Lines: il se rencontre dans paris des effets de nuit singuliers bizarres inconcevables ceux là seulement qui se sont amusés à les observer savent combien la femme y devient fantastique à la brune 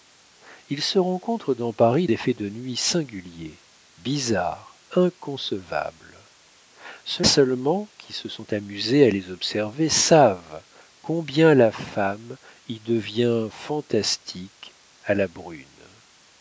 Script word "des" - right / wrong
wrong